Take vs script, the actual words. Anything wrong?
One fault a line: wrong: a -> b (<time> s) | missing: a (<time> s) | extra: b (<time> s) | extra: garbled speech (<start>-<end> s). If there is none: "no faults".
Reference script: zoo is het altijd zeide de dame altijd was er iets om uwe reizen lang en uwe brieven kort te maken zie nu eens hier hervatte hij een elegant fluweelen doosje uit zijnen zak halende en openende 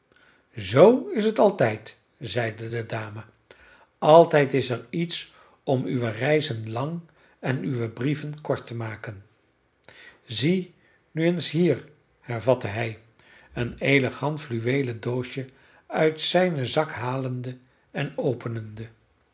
wrong: was -> is (4.5 s)